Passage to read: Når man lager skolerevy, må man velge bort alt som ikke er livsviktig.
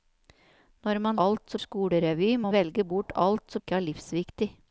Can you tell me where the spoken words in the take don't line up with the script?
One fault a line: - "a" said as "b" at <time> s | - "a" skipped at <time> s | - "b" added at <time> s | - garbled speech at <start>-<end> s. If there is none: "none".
- "lager" said as "alt" at 1.3 s
- "man" skipped at 2.5 s
- "som" skipped at 3.6 s